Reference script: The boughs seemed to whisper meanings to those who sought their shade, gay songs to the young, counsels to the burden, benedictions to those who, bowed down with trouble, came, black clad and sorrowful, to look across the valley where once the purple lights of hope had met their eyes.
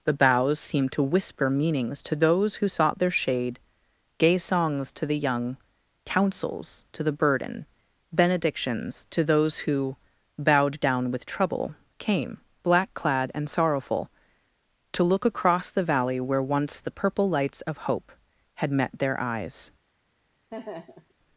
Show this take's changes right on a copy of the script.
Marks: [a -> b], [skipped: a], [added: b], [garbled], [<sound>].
The boughs seemed to whisper meanings to those who sought their shade, gay songs to the young, counsels to the burden, benedictions to those who, bowed down with trouble, came, black clad and sorrowful, to look across the valley where once the purple lights of hope had met their eyes. [laugh]